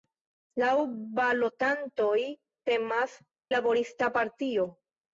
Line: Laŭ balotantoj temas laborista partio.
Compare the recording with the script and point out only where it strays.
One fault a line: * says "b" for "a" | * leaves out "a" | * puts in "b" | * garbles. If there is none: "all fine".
all fine